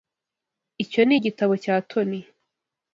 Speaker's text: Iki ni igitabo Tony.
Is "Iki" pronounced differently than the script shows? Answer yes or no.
yes